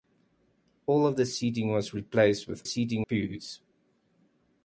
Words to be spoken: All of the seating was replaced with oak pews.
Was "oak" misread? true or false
true